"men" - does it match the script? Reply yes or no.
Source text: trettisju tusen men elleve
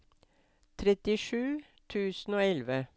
no